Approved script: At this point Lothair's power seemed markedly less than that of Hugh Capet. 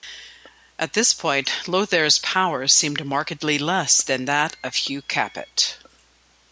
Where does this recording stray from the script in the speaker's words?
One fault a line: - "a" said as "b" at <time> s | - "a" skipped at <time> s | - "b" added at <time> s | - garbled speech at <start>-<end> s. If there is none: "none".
none